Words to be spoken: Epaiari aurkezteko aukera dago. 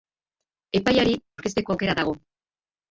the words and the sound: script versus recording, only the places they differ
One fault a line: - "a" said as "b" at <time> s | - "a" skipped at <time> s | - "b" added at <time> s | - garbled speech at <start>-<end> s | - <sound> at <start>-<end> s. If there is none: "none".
none